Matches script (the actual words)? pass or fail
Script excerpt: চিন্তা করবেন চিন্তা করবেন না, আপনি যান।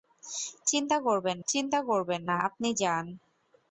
pass